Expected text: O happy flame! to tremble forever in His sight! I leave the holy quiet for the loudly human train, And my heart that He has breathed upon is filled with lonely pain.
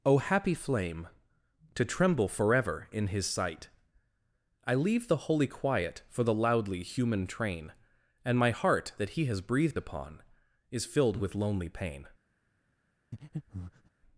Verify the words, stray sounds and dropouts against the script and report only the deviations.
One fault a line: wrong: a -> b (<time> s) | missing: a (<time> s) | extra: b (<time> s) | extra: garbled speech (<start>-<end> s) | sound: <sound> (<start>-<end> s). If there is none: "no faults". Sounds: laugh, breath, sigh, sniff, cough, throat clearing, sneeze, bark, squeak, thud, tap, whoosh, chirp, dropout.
sound: breath (13.1-13.9 s)